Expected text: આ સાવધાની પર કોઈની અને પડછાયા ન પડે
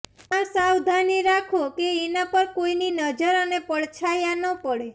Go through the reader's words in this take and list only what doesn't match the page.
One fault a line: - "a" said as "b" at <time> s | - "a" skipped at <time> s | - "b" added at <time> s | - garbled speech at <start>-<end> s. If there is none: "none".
- "રાખો કે એના" added at 1.2 s
- "નજર" added at 2.9 s